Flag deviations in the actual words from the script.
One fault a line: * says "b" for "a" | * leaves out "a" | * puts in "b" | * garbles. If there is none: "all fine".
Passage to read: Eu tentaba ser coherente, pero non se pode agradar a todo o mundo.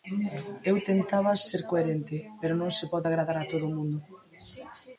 all fine